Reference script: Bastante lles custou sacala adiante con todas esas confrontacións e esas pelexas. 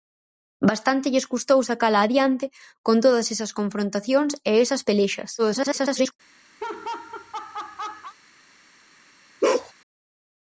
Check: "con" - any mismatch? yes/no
no